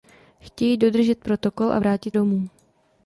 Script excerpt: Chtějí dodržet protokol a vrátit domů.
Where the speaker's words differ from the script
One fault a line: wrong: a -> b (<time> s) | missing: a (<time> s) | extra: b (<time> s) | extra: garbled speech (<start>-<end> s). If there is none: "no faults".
no faults